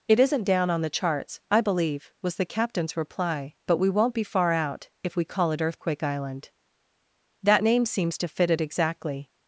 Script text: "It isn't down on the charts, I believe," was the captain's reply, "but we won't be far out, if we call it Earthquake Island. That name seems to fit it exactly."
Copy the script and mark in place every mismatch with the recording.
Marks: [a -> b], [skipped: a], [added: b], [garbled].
"It isn't down on the charts, I believe," was the captain's reply, "but we won't be far out, if we call it Earthquake Island. That name seems to fit it exactly."